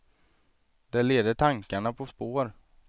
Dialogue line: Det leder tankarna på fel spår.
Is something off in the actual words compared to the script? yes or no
yes